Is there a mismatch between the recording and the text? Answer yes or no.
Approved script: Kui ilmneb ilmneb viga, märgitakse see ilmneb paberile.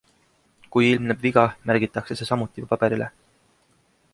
yes